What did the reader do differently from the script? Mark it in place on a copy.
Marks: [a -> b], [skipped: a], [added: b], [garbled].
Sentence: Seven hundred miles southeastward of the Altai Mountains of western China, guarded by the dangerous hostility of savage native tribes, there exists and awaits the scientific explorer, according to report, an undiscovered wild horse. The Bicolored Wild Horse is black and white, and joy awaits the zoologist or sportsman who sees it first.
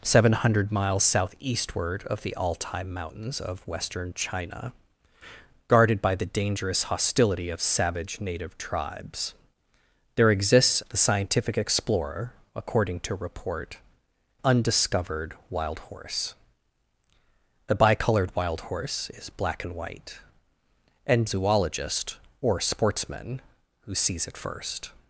Seven hundred miles southeastward of the Altai Mountains of western China, guarded by the dangerous hostility of savage native tribes, there exists [skipped: and awaits] the scientific explorer, according to report, [skipped: an] undiscovered wild horse. The Bicolored Wild Horse is black and white, and [skipped: joy awaits the] zoologist or sportsman who sees it first.